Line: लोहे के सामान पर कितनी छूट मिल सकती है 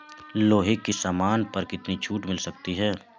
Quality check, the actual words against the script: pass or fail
pass